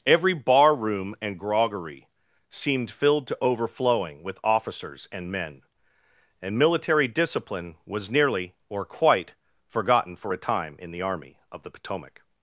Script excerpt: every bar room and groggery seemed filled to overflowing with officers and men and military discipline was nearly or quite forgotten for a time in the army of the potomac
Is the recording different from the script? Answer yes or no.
no